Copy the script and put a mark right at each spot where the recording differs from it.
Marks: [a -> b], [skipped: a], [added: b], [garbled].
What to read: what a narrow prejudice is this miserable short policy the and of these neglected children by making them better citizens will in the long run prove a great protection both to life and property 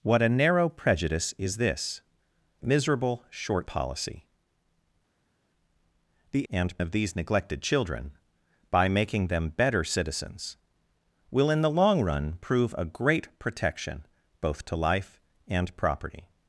what a narrow prejudice is this miserable short policy the and of these neglected children by making them better citizens will in the long run prove a great protection both to life and property